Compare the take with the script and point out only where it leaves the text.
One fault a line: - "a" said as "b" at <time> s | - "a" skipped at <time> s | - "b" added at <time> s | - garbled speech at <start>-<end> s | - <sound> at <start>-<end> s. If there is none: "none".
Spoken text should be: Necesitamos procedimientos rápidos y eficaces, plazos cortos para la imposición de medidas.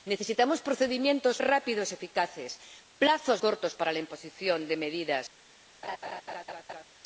- laugh at 5.8-6.8 s